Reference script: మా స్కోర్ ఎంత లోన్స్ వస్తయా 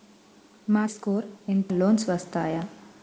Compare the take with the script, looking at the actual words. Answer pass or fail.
pass